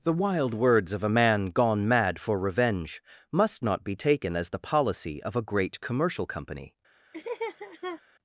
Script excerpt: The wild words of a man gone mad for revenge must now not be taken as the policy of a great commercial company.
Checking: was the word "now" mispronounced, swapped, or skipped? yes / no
yes